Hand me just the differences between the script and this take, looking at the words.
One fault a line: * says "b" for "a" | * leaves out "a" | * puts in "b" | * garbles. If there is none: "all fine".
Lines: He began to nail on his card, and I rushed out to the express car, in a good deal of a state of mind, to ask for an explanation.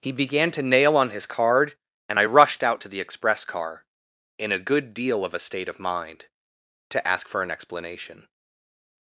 all fine